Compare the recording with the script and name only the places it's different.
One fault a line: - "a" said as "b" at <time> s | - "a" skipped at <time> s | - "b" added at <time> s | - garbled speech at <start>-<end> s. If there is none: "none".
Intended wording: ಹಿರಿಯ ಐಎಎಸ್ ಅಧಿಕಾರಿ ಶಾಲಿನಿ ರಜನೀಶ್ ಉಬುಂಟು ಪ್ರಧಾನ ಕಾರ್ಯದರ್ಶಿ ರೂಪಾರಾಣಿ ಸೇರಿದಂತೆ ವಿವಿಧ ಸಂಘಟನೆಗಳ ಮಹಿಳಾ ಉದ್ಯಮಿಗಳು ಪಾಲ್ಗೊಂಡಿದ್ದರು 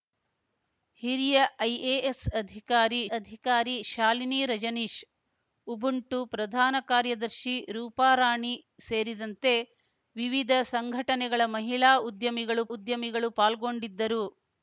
- "ಅಧಿಕಾರಿ" added at 3.2 s
- "ಉದ್ಯಮಿಗಳು" added at 12.7 s